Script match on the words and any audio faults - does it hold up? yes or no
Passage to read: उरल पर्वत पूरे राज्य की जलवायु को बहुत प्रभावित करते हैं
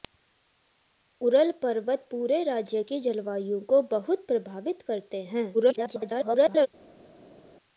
no